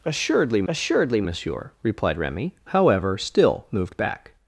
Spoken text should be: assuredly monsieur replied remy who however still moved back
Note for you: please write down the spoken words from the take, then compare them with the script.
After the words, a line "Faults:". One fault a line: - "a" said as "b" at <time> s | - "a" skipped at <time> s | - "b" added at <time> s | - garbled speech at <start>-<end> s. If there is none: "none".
assuredly assuredly monsieur replied remy however still moved back
Faults:
- "assuredly" added at 0.7 s
- "who" skipped at 2.5 s